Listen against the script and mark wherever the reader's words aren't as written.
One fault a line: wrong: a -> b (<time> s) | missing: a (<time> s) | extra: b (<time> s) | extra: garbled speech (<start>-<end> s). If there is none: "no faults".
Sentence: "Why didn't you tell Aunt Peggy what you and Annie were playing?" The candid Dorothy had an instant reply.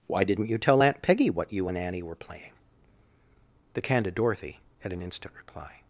no faults